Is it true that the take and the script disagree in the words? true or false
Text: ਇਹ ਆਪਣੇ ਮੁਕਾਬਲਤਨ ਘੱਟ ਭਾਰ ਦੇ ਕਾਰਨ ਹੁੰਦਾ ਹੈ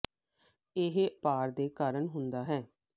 true